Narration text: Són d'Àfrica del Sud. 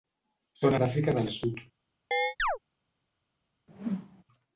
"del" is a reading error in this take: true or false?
false